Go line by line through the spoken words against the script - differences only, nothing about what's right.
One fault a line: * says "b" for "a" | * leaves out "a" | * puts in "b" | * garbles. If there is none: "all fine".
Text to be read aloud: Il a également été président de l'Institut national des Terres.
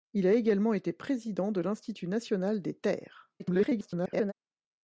* garbles